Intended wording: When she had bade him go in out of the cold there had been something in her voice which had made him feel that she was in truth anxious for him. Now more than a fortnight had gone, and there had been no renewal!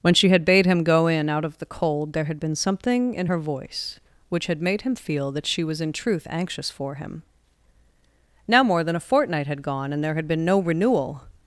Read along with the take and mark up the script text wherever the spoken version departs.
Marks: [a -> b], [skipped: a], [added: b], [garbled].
When she had bade him go in out of the cold there had been something in her voice which had made him feel that she was in truth anxious for him. Now more than a fortnight had gone, and there had been no renewal!